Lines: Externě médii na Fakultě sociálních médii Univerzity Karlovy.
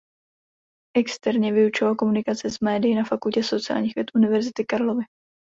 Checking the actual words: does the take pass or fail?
fail